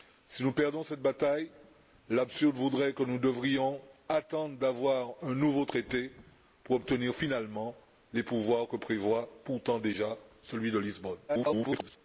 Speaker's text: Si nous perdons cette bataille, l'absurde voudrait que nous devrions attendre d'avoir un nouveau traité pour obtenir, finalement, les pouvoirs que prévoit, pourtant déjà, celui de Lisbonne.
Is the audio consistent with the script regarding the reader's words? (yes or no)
no